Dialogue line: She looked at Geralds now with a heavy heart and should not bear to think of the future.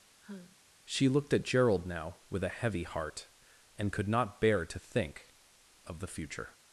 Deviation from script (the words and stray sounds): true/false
true